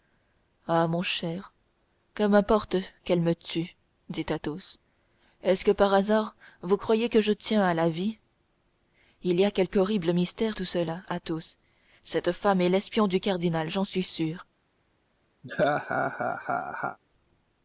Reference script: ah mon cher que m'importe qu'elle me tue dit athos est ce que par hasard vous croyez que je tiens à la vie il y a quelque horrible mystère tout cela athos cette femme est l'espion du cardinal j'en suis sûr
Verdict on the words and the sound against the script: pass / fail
fail